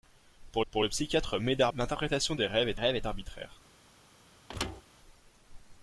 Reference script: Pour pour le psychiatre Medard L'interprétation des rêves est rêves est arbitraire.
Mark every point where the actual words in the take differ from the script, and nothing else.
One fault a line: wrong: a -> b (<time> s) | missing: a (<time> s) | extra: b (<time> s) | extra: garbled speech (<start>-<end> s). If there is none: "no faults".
no faults